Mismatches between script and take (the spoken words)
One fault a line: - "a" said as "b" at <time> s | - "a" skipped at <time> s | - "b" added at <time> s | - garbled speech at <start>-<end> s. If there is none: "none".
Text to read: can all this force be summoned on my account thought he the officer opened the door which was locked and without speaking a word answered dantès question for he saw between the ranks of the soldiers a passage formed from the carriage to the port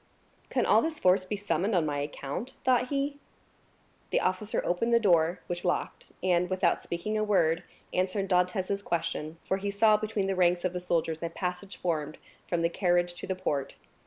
- "was" skipped at 5.6 s